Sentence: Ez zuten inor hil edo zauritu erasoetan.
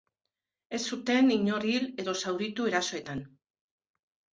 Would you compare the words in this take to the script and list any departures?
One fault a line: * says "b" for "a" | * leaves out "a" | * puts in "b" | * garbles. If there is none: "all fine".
all fine